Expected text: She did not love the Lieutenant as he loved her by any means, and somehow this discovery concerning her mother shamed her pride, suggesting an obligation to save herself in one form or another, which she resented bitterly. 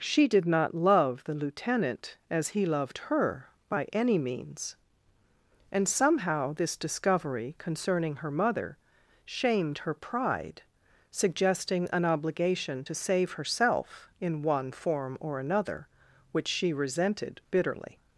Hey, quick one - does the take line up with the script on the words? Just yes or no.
yes